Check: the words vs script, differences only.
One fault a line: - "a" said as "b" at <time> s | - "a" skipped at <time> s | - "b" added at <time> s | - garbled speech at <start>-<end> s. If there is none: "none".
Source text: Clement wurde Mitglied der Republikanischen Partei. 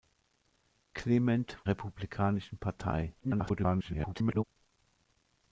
- "wurde Mitglied der" skipped at 1.6 s
- garbled speech at 3.2-4.4 s